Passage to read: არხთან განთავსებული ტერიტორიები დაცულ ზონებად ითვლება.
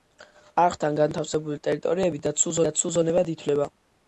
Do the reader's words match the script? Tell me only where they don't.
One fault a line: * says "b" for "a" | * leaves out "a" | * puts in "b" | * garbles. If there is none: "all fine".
* puts in "დაცულ"